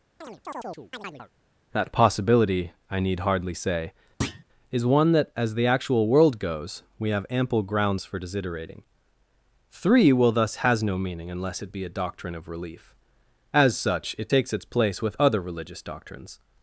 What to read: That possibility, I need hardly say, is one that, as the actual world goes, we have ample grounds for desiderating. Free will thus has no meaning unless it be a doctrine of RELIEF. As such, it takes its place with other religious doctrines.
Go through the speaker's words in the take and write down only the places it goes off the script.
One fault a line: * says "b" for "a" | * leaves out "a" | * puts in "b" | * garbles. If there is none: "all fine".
* says "Three" for "Free"